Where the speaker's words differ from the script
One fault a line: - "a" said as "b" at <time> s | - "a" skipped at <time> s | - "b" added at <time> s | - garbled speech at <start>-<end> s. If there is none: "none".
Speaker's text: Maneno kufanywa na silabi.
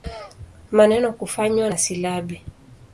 none